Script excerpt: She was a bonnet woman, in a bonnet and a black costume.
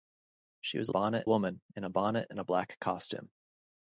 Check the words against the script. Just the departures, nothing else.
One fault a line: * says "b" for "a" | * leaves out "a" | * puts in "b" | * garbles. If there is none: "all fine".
all fine